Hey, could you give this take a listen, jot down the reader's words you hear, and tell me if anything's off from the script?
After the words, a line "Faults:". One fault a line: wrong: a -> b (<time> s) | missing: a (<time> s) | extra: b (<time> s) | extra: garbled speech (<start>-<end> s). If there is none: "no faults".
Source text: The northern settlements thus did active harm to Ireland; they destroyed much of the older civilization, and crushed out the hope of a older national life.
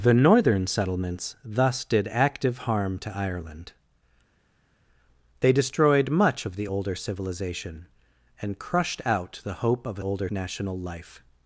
The northern settlements thus did active harm to Ireland; they destroyed much of the older civilization, and crushed out the hope of a older national life.
Faults:
no faults